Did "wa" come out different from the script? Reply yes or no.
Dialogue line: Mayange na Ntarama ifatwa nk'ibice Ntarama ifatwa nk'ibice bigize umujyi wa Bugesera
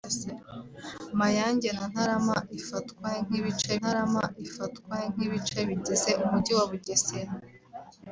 no